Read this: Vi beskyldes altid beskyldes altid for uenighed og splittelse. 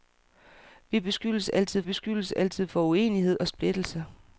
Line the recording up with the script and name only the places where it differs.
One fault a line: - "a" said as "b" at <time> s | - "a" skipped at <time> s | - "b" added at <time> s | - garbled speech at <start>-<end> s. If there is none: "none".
none